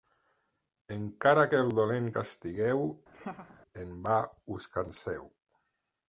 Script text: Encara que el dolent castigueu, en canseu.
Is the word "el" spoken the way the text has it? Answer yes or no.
yes